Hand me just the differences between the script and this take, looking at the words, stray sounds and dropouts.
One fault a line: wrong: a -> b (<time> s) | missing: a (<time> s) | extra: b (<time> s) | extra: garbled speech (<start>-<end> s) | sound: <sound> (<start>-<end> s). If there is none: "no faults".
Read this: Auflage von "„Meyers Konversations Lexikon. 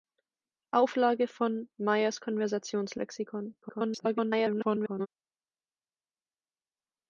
extra: garbled speech (3.6-5.1 s)